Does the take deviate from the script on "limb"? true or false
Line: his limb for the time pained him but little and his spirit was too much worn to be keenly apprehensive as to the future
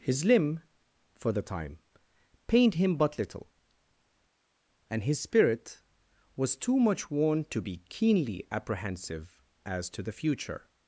false